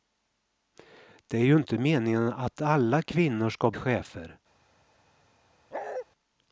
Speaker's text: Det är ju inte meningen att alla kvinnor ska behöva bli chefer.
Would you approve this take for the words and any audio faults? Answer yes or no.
no